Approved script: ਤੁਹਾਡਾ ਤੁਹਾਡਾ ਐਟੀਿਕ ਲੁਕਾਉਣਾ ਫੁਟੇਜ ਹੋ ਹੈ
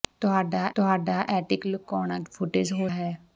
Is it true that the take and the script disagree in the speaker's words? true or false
false